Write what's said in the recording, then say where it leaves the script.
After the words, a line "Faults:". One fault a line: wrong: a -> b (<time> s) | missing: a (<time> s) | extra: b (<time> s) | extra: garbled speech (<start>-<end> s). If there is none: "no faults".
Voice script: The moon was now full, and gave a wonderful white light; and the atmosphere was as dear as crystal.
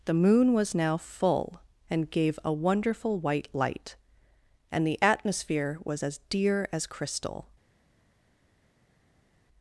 The moon was now full, and gave a wonderful white light; and the atmosphere was as dear as crystal.
Faults:
no faults